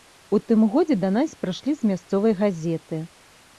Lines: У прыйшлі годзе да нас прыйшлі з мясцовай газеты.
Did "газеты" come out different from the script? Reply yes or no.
no